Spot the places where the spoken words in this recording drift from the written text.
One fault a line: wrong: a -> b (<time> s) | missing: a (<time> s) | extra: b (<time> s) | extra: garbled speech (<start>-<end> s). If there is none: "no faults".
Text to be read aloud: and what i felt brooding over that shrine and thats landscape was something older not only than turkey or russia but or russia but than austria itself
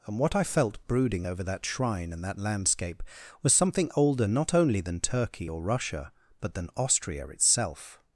wrong: thats -> that (2.2 s)
missing: or russia but (6.5 s)